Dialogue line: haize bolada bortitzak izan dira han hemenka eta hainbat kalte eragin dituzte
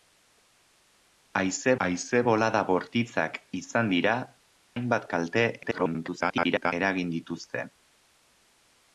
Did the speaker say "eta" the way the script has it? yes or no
no